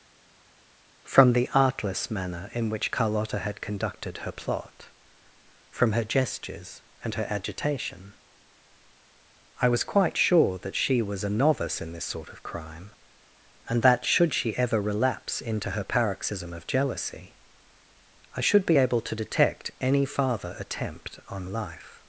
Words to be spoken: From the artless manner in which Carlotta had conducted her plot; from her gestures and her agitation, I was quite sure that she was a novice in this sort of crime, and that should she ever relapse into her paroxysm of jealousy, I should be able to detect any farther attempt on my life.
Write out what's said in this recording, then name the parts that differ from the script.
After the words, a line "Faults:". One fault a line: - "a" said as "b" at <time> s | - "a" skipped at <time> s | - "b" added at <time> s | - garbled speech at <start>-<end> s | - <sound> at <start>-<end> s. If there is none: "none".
From the artless manner in which Carlotta had conducted her plot; from her gestures and her agitation, I was quite sure that she was a novice in this sort of crime, and that should she ever relapse into her paroxysm of jealousy, I should be able to detect any farther attempt on life.
Faults:
- "my" skipped at 21.5 s